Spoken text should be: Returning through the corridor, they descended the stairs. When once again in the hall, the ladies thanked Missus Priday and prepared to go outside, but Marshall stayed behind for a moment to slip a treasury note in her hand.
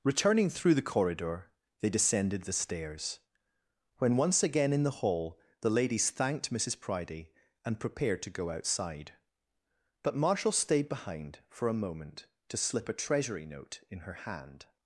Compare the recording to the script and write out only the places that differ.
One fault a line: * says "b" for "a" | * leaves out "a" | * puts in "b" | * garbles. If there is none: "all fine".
all fine